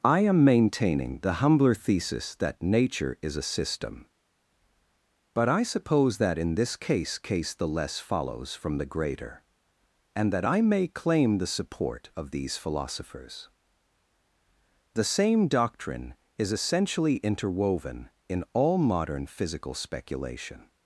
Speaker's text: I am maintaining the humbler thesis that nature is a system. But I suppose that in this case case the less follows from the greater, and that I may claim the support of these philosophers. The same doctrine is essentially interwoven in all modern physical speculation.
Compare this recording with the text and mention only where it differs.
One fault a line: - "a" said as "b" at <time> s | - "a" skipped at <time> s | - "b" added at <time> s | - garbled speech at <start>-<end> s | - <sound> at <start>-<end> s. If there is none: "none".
none